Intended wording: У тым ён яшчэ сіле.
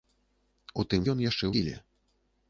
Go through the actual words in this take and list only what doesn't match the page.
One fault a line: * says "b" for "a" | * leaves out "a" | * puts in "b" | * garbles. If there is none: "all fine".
all fine